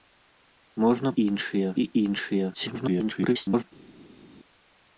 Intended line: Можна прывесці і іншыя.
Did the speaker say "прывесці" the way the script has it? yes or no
no